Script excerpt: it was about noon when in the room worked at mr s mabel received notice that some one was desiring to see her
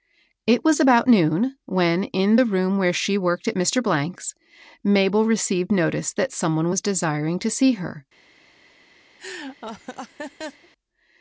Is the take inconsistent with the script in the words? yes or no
yes